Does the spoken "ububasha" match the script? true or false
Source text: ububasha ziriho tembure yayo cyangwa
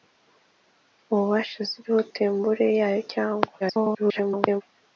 true